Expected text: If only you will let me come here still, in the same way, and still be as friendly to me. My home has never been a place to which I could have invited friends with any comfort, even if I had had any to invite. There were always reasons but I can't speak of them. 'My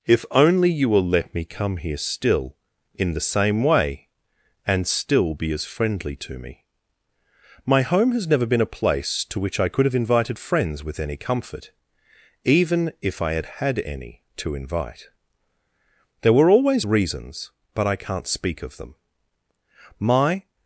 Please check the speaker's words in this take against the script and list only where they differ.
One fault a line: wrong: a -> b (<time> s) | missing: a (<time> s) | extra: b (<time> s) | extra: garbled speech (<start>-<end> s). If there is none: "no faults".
no faults